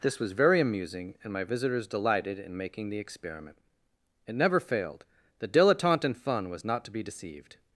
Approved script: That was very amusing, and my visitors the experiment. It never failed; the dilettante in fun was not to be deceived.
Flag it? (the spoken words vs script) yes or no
yes